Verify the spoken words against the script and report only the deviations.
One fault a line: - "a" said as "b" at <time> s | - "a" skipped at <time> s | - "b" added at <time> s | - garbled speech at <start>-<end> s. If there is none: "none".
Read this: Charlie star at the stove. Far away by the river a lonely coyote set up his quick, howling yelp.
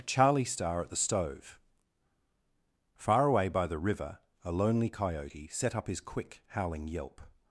none